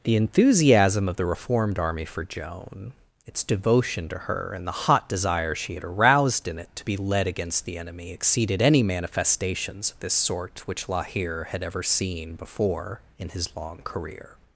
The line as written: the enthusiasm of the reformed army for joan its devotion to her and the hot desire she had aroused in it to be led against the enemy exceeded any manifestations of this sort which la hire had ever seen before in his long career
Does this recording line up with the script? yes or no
yes